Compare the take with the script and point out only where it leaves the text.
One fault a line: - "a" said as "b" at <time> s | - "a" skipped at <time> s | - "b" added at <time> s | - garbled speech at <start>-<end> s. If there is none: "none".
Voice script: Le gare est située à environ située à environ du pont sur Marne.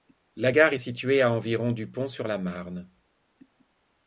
- "Le" said as "La" at 0.3 s
- "située à environ" skipped at 1.7 s
- "la" added at 2.3 s